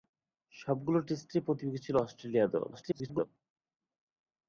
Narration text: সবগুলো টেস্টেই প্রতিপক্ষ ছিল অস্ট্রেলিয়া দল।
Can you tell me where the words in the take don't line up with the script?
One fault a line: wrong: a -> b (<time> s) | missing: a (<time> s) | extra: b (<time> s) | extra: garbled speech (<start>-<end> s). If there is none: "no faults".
extra: garbled speech (2.7-3.3 s)